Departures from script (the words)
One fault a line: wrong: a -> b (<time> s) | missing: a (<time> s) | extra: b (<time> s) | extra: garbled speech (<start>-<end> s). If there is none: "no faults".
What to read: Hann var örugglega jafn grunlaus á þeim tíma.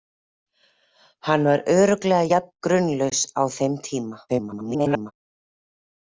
extra: garbled speech (4.3-5.1 s)